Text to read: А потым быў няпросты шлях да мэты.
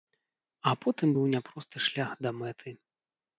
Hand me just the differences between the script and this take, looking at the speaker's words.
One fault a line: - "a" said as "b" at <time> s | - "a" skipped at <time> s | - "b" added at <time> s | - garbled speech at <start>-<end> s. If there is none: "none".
none